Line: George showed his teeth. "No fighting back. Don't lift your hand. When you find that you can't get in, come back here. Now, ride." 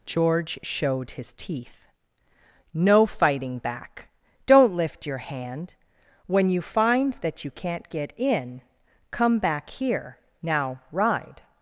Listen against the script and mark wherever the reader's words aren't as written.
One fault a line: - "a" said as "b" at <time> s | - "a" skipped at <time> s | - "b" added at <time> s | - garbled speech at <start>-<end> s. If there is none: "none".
none